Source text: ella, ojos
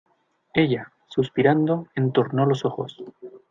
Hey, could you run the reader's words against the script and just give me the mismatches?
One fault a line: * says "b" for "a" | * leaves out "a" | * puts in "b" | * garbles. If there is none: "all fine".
* puts in "suspirando entornó los"